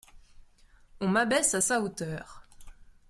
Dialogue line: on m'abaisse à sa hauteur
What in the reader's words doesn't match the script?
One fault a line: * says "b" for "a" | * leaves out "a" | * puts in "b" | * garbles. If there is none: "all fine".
all fine